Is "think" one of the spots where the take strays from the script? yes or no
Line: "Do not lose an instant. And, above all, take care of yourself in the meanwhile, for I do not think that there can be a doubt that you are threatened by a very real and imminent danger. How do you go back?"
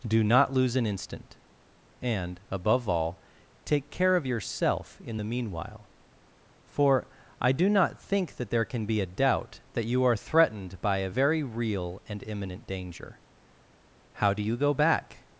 no